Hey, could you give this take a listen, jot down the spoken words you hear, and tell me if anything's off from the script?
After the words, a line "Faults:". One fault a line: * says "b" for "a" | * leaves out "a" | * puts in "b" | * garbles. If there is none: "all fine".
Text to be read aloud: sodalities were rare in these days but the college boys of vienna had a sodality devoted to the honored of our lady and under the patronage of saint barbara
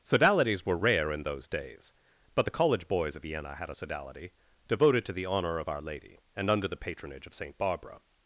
sodalities were rare in those days but the college boys of vienna had a sodality devoted to the honor of our lady and under the patronage of saint barbara
Faults:
* says "those" for "these"
* says "honor" for "honored"